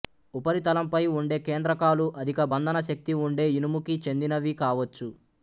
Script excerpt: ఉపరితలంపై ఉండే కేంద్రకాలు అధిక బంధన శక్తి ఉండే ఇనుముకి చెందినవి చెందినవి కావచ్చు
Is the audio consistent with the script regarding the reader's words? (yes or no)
no